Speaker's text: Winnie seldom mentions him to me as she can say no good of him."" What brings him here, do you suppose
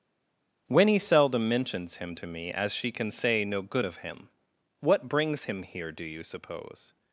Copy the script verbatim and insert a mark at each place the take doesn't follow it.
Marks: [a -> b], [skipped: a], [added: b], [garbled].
Winnie seldom mentions him to me as she can say no good of him."" What brings him here, do you suppose